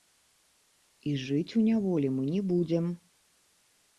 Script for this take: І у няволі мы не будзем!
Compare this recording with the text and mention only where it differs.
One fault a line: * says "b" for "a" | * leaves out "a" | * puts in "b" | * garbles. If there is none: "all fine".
* puts in "жыць"